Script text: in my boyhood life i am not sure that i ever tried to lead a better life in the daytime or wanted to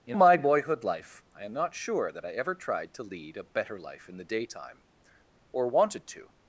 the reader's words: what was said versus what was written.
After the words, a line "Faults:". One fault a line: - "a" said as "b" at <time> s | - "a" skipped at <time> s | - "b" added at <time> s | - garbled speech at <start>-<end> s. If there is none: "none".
in my boyhood life i am not sure that i ever tried to lead a better life in the daytime or wanted to
Faults:
none